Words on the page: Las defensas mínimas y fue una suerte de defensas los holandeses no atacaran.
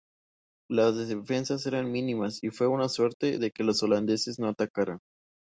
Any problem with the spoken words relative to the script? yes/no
yes